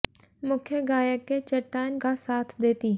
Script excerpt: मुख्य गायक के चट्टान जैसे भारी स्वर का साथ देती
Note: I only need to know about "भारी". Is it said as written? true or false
false